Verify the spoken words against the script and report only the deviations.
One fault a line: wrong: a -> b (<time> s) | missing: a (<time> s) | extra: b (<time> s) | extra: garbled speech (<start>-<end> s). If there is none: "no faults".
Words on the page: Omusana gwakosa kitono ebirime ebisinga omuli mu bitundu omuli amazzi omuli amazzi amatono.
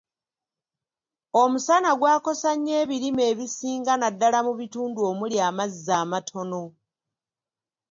wrong: kitono -> nnyo (2.5 s)
wrong: omuli -> naddala (4.0 s)
missing: omuli amazzi (5.9 s)